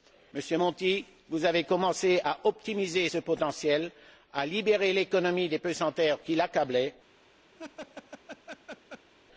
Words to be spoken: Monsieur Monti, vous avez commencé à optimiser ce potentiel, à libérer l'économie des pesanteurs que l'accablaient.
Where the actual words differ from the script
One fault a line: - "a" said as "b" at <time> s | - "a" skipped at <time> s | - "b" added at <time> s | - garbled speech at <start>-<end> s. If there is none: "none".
- "que" said as "qui" at 6.2 s